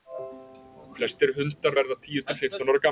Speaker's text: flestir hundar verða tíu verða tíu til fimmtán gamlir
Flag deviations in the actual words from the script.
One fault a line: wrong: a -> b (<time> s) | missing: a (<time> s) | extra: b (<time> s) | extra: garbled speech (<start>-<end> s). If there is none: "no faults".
missing: verða tíu (2.3 s)
extra: ára (2.6 s)